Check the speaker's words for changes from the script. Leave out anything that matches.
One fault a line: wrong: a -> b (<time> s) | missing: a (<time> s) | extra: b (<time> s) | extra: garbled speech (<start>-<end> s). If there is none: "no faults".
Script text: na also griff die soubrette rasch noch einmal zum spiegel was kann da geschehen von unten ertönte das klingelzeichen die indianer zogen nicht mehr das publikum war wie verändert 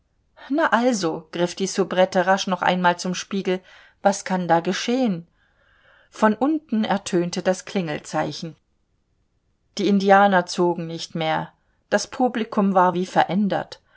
no faults